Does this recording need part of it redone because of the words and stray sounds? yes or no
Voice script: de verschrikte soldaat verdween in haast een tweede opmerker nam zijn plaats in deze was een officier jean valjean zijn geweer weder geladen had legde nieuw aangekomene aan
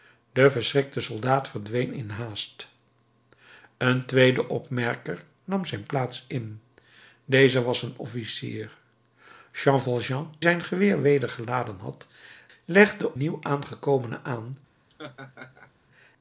yes